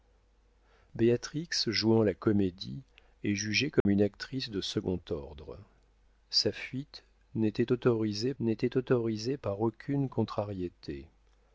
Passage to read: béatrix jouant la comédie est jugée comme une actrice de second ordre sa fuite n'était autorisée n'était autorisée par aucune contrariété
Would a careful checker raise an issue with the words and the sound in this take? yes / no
yes